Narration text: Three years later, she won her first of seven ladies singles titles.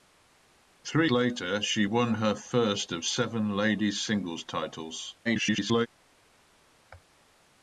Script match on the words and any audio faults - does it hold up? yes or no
no